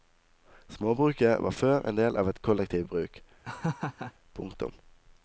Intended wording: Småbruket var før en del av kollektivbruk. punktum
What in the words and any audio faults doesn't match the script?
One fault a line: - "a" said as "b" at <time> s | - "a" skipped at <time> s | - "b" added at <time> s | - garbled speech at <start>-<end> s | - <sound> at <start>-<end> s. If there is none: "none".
- "et" added at 2.3 s
- laugh at 3.4-4.1 s